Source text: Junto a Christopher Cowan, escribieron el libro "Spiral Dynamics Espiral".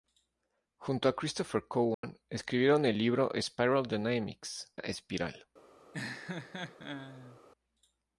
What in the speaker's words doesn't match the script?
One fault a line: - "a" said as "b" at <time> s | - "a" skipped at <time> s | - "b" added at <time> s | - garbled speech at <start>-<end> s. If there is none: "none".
none